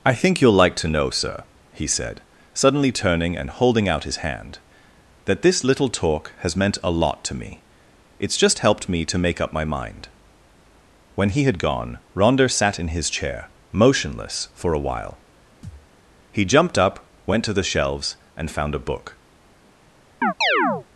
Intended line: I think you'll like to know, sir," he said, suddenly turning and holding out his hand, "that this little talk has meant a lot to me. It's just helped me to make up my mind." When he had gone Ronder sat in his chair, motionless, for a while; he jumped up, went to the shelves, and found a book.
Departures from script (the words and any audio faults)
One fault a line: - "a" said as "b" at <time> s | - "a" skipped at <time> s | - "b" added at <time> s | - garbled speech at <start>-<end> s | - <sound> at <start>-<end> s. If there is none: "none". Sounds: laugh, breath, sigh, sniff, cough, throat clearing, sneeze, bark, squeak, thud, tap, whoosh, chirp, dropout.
- thud at 15.6-15.9 s
- chirp at 20.2-20.9 s